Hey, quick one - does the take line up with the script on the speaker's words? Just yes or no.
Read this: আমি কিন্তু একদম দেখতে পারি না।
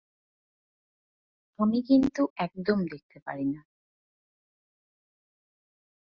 yes